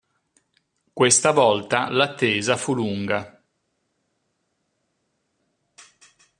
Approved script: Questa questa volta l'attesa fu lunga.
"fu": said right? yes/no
yes